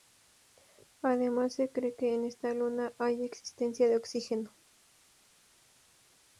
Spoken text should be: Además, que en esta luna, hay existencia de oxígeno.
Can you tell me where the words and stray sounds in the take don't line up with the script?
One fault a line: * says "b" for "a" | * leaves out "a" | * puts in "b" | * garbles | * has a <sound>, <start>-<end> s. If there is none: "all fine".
* puts in "se cree"